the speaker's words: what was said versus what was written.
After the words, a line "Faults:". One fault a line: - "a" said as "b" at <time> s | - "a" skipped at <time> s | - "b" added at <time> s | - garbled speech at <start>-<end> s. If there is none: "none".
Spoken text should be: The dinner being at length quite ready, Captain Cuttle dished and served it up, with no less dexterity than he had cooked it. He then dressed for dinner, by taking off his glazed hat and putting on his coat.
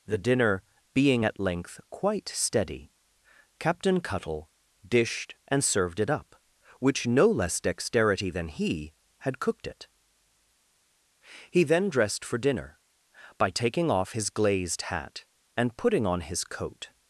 The dinner being at length quite steady, Captain Cuttle dished and served it up, which no less dexterity than he had cooked it. He then dressed for dinner, by taking off his glazed hat and putting on his coat.
Faults:
- "ready" said as "steady" at 2.3 s
- "with" said as "which" at 6.8 s